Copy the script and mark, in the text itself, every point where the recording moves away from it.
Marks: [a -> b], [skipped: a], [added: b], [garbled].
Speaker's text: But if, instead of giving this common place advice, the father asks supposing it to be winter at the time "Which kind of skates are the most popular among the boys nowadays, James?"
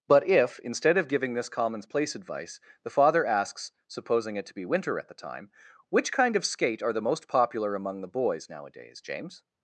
But if, instead of giving this [common -> commons] place advice, the father asks supposing it to be winter at the time "Which kind of [skates -> skate] are the most popular among the boys nowadays, James?"